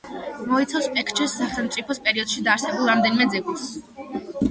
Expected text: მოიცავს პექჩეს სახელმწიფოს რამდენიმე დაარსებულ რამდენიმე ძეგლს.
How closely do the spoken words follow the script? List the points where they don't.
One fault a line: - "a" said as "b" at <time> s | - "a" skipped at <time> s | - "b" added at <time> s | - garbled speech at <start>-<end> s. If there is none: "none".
- "რამდენიმე" said as "პერიოდში" at 2.0 s